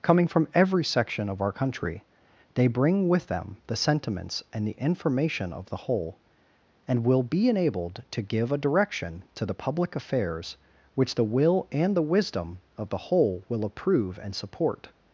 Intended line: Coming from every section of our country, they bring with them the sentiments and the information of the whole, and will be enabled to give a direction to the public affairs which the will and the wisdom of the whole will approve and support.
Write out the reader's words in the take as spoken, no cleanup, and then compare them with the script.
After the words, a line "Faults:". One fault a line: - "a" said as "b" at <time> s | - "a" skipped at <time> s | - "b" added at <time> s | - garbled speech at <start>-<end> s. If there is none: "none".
Coming from every section of our country, they bring with them the sentiments and the information of the whole, and will be enabled to give a direction to the public affairs which the will and the wisdom of the whole will approve and support.
Faults:
none